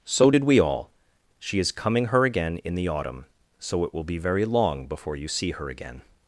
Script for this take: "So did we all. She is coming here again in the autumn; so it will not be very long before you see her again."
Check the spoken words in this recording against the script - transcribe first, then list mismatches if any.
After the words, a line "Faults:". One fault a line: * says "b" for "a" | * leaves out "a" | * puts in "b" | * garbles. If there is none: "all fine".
"So did we all. She is coming her again in the autumn; so it will be very long before you see her again."
Faults:
* says "her" for "here"
* leaves out "not"